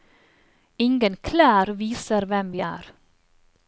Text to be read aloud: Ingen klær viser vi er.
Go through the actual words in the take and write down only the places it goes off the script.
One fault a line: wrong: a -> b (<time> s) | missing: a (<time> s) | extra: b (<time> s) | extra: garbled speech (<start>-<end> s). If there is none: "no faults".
extra: hvem (2.3 s)